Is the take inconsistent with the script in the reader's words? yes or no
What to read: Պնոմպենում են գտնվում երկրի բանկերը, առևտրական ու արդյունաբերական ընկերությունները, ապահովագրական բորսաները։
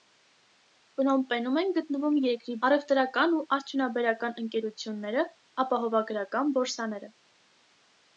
yes